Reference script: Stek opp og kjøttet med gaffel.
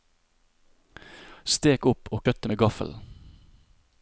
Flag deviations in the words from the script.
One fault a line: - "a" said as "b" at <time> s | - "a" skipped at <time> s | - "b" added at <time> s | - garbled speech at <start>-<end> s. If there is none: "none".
none